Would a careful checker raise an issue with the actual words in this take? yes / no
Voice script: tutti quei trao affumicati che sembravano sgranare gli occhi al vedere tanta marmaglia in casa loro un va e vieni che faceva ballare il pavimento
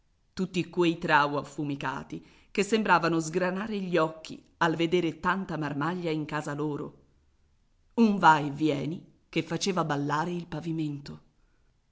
no